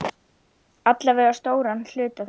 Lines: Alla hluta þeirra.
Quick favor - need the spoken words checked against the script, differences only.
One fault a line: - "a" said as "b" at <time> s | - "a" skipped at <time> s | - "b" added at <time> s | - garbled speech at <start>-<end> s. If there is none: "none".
- "vega stóran" added at 1.2 s